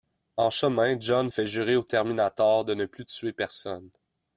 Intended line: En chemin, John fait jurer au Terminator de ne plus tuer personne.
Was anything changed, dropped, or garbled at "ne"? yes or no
no